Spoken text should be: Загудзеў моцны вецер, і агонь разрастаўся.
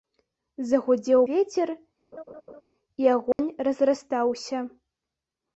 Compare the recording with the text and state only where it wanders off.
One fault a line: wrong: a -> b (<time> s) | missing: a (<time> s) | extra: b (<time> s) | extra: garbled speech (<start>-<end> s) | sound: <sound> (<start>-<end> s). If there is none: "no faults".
missing: моцны (1.2 s)
sound: laugh (2.1-2.6 s)
sound: dropout (3.3-3.4 s)